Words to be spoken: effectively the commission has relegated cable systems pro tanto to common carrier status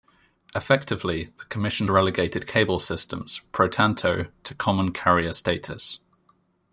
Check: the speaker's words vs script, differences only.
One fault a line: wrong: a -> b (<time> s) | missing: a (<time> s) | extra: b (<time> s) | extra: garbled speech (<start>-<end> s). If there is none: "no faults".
missing: has (1.9 s)